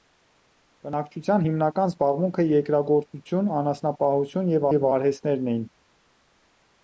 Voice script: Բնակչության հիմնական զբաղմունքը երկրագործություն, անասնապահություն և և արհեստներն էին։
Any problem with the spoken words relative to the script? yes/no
no